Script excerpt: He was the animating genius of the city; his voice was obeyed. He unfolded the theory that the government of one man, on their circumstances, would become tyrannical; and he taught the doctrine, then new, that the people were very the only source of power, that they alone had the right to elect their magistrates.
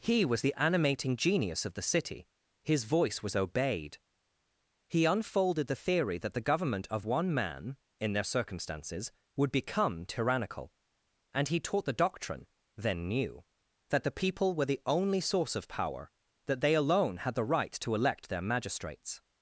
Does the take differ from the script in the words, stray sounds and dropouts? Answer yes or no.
yes